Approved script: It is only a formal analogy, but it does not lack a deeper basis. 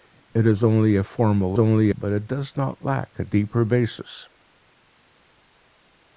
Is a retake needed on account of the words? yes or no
yes